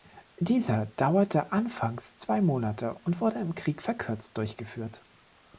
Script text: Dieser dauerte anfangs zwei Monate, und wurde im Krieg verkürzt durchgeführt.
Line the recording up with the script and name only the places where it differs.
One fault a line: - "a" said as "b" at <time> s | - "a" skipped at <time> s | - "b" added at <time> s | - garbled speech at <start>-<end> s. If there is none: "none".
none